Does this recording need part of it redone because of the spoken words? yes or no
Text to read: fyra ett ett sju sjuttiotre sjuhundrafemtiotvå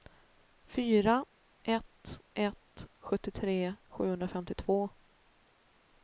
yes